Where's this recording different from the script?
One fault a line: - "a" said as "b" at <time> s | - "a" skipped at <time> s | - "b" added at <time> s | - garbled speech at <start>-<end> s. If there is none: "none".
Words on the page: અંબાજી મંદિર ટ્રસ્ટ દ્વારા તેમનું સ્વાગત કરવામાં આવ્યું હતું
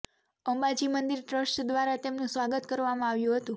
none